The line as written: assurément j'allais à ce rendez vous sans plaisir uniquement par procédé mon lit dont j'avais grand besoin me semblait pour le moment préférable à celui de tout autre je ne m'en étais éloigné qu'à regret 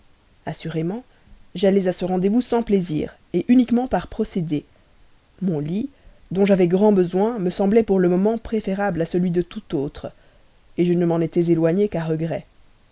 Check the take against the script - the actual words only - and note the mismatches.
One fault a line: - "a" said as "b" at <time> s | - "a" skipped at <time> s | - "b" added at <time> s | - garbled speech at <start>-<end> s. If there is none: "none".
none